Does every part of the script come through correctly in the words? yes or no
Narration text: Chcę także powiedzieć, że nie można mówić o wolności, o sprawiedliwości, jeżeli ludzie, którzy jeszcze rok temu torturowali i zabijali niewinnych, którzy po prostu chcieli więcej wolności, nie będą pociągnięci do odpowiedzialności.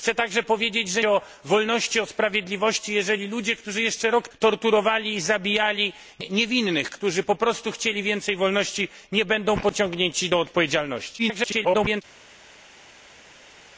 no